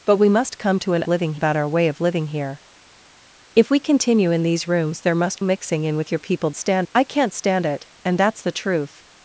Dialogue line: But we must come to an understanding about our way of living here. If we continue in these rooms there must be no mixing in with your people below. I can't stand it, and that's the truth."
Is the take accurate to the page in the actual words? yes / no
no